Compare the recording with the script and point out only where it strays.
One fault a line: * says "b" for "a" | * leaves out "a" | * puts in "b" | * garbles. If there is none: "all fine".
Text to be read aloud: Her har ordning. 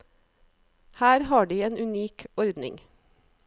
* puts in "de en unik"